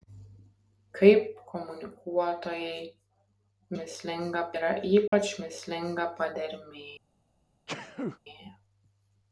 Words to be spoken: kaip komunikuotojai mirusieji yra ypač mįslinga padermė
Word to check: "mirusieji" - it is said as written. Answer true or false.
false